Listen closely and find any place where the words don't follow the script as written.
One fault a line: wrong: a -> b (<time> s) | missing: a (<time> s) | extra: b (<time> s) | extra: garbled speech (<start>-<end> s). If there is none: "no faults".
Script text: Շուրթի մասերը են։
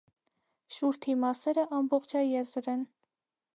extra: ամբողջաեզր (1.8 s)